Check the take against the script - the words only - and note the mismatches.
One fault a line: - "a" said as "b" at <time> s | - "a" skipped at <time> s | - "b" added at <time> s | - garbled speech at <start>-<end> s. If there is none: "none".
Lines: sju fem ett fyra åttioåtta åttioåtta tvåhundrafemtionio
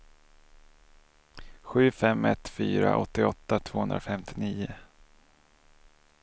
- "åttioåtta" skipped at 3.6 s